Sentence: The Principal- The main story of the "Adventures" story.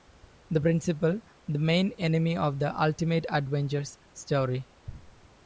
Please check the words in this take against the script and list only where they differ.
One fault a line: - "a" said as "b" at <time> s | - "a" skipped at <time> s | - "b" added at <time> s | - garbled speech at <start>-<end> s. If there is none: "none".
- "story" said as "enemy" at 2.0 s
- "Ultimate" added at 2.8 s